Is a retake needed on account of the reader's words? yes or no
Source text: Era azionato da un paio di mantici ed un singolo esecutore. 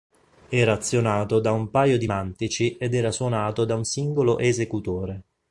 yes